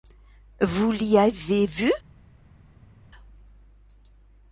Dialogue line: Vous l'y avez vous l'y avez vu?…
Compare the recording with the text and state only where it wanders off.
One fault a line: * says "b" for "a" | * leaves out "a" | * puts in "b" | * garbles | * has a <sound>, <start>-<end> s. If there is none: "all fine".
* leaves out "vous l'y avez"